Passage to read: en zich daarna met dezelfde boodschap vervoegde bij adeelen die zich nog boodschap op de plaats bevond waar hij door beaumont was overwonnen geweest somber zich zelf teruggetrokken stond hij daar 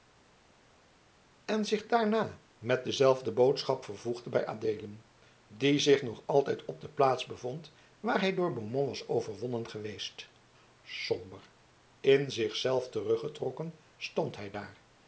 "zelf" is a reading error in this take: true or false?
false